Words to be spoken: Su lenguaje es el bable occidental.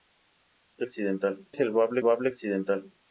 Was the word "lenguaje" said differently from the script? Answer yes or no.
yes